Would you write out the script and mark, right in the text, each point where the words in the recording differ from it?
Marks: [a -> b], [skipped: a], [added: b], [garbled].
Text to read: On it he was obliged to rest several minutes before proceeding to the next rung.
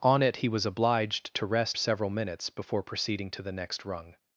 On it he was obliged to rest several minutes before proceeding to the next rung.